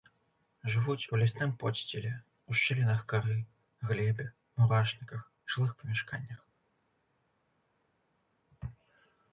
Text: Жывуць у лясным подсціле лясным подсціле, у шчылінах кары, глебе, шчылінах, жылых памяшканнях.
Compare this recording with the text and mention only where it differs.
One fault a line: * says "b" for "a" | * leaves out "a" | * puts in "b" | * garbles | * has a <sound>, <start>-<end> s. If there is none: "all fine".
* leaves out "лясным подсціле"
* says "мурашніках" for "шчылінах"